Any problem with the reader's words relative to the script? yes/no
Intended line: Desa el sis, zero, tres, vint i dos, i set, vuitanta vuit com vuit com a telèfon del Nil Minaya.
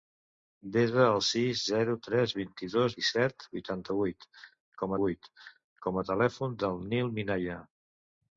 no